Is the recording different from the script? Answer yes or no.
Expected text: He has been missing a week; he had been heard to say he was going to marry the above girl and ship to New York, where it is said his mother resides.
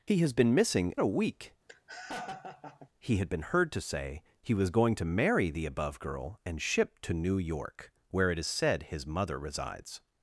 no